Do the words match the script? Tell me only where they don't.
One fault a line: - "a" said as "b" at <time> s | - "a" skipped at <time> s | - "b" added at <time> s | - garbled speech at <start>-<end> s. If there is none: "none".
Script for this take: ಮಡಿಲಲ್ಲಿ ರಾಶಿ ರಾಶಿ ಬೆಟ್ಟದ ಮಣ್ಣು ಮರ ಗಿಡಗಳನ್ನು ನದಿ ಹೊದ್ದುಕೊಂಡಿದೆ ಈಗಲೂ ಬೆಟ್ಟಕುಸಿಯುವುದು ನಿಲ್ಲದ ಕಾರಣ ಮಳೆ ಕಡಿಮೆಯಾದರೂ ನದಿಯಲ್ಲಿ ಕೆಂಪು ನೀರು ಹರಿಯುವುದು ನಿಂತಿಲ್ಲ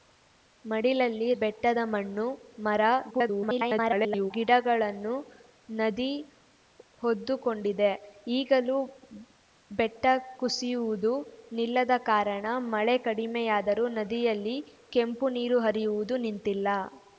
- "ರಾಶಿ ರಾಶಿ" skipped at 1.3 s
- garbled speech at 3.1-4.3 s